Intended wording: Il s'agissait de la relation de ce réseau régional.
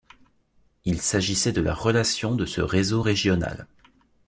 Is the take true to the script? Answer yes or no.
yes